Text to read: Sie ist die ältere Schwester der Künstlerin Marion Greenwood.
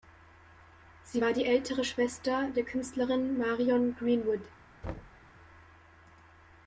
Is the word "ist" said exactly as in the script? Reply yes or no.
no